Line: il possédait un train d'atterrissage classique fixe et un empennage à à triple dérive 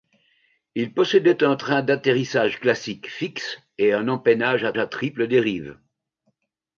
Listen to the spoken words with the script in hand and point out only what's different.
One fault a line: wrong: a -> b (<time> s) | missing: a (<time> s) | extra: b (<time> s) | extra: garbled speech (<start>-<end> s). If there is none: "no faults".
no faults